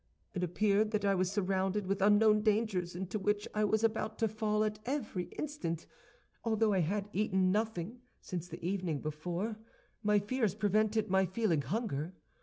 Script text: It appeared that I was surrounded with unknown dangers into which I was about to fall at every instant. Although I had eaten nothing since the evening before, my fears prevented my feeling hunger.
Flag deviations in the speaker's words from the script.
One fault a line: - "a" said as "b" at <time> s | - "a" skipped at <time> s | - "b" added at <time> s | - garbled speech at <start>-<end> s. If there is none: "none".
none